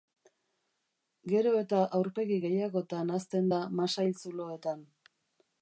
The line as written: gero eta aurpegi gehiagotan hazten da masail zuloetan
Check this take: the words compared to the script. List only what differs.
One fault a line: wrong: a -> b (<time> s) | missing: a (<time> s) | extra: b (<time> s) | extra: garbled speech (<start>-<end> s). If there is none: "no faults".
no faults